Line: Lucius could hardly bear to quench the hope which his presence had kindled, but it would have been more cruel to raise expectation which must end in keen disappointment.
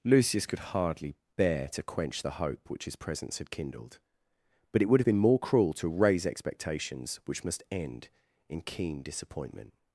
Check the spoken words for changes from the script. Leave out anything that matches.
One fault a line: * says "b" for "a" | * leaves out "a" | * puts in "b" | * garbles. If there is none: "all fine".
* says "expectations" for "expectation"